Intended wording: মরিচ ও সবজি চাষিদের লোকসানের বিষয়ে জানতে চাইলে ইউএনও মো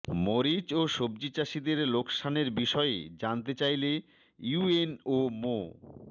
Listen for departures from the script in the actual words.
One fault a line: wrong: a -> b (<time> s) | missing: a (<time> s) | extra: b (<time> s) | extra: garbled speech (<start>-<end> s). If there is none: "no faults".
no faults